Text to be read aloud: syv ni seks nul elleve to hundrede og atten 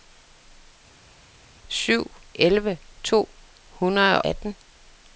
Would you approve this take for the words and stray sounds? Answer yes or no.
no